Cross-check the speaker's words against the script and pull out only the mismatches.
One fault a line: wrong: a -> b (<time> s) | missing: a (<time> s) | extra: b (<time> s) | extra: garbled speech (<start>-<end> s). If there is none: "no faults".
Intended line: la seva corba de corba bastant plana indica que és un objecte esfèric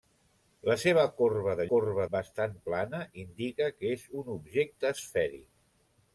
no faults